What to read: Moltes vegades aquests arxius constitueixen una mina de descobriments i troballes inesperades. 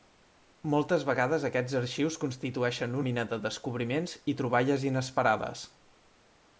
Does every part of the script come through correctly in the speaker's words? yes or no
no